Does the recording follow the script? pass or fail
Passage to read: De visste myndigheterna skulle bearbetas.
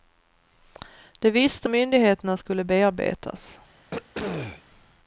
pass